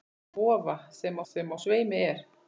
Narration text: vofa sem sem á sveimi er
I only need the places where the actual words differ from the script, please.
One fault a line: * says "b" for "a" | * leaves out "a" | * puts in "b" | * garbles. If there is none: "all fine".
all fine